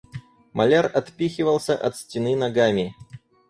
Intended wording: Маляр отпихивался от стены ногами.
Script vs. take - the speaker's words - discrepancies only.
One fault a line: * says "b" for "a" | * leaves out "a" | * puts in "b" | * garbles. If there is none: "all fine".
all fine